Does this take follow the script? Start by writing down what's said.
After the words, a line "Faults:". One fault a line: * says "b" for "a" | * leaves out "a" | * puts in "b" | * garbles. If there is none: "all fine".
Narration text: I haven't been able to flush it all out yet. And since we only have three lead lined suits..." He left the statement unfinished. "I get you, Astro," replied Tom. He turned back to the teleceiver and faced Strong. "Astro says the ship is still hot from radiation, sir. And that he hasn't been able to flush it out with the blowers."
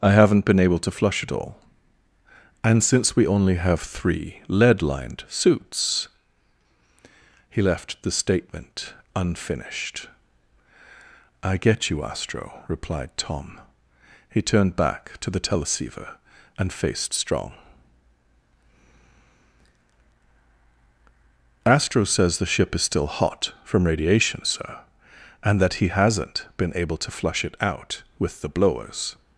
I haven't been able to flush it all. And since we only have three lead lined suits..." He left the statement unfinished. "I get you, Astro," replied Tom. He turned back to the teleceiver and faced Strong. "Astro says the ship is still hot from radiation, sir. And that he hasn't been able to flush it out with the blowers."
Faults:
* leaves out "out yet"